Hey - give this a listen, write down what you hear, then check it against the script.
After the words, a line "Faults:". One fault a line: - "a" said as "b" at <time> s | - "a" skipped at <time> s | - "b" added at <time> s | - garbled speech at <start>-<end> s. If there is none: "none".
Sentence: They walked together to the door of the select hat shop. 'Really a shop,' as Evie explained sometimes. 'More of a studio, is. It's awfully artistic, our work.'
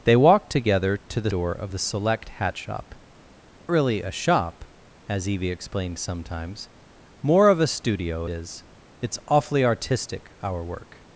They walked together to the door of the select hat shop. 'Really a shop,' as Evie explained sometimes. 'More of a studio, is. It's awfully artistic, our work.'
Faults:
none